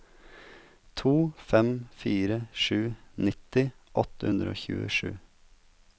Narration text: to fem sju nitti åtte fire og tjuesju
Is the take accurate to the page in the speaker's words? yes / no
no